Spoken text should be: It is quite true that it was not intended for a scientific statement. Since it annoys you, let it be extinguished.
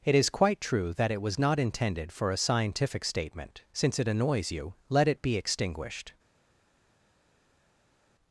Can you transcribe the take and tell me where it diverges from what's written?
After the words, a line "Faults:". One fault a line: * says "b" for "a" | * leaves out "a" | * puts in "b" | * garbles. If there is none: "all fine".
It is quite true that it was not intended for a scientific statement. Since it annoys you, let it be extinguished.
Faults:
all fine